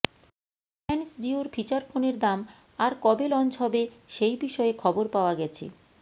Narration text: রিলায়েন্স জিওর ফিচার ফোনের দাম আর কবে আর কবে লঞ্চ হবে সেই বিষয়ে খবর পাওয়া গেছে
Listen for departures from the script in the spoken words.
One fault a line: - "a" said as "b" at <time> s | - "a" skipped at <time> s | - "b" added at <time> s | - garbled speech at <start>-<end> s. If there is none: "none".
- "আর কবে" skipped at 3.3 s